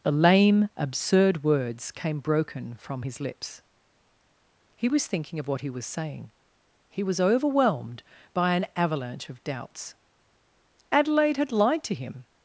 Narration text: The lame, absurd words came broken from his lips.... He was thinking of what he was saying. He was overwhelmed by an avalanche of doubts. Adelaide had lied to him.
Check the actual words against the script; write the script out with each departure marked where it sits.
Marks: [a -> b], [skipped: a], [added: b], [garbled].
The lame, absurd words came broken from his lips.... He was thinking of what he was saying. He was overwhelmed by an avalanche of doubts. Adelaide had lied to him.